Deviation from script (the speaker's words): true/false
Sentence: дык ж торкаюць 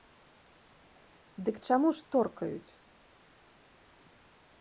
true